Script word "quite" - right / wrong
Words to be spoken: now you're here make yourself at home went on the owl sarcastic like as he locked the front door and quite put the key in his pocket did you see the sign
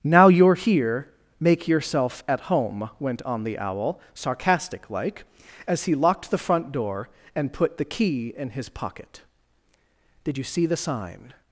wrong